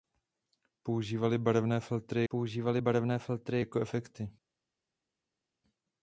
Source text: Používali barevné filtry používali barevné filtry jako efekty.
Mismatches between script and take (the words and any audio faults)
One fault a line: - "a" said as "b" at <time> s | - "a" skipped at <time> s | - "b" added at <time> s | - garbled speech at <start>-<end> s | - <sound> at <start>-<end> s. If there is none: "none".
none